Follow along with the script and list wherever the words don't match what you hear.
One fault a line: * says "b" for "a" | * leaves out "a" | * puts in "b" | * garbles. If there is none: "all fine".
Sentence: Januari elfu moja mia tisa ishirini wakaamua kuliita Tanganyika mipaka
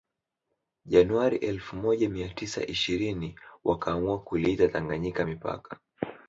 all fine